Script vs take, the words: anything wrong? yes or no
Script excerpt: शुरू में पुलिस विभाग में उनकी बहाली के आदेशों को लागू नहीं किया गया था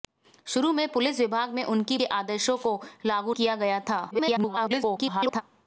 yes